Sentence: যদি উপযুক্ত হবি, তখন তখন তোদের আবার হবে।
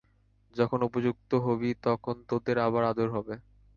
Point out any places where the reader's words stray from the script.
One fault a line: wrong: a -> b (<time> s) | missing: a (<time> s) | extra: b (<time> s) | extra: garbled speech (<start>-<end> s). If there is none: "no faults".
wrong: যদি -> যখন (0.6 s)
missing: তখন (2.1 s)
extra: আদর (2.9 s)